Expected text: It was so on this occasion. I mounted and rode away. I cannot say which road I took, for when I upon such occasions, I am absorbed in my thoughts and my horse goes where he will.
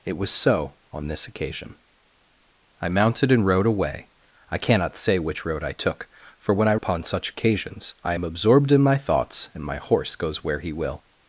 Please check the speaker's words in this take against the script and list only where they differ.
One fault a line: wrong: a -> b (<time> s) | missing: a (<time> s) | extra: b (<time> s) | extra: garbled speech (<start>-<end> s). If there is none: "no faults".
no faults